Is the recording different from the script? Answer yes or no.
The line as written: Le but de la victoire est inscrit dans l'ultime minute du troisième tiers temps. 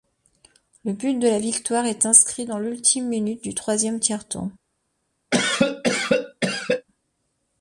no